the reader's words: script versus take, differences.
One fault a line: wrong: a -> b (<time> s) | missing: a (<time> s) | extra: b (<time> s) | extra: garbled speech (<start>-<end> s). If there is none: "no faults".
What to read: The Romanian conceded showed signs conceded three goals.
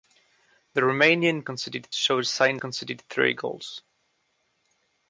no faults